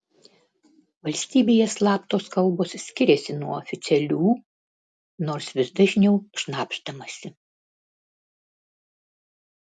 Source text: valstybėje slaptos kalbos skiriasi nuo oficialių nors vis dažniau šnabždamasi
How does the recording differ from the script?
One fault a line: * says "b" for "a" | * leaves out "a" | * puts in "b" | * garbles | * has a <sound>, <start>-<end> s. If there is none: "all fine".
all fine